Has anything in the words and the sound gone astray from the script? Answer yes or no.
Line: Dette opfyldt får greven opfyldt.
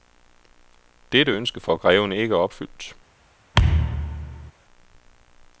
yes